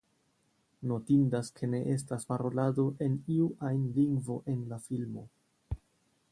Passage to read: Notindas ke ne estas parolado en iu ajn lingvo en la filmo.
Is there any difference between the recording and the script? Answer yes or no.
no